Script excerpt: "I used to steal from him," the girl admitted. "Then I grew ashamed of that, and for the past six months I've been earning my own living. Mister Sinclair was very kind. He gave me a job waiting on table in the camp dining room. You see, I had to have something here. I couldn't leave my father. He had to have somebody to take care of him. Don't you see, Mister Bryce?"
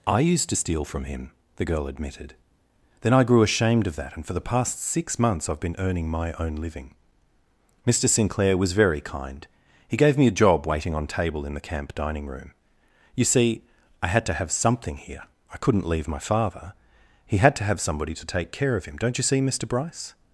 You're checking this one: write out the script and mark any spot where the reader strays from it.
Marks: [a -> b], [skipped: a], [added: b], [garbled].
"I used to steal from him," the girl admitted. "Then I grew ashamed of that, and for the past six months I've been earning my own living. Mister Sinclair was very kind. He gave me a job waiting on table in the camp dining room. You see, I had to have something here. I couldn't leave my father. He had to have somebody to take care of him. Don't you see, Mister Bryce?"